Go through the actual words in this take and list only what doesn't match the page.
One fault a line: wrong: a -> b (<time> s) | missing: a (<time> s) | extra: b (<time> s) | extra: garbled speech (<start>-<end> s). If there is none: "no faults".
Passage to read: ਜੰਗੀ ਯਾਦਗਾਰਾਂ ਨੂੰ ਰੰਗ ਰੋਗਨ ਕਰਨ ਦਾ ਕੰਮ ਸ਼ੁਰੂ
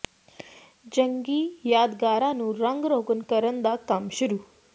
no faults